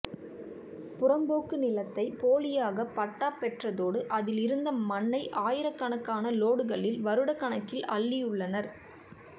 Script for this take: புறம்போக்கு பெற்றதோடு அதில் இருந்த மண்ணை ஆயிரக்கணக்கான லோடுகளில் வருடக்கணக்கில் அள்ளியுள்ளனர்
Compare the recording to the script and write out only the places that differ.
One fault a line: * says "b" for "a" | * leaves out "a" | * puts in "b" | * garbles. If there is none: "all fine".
* puts in "நிலத்தை போலியாக பட்டா"